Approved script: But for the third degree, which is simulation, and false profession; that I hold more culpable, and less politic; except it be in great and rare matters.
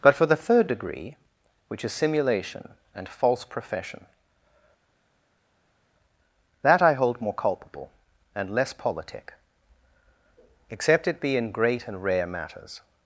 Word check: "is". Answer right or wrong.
right